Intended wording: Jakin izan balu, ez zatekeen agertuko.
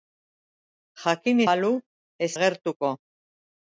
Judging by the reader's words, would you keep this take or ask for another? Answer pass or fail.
fail